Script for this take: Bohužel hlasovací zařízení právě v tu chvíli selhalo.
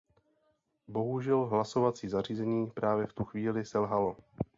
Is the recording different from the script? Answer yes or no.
no